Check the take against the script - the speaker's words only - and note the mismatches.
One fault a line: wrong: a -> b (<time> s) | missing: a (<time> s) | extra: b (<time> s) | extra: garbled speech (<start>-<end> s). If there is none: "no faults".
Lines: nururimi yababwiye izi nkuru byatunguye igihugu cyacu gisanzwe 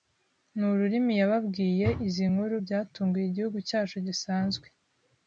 no faults